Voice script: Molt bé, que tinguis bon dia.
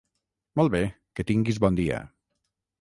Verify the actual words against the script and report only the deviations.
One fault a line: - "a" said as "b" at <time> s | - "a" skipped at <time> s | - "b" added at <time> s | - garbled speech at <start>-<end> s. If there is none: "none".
none